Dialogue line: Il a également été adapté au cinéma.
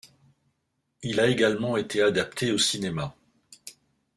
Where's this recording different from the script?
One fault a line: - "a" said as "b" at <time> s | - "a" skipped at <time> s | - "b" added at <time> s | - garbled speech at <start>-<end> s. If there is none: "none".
none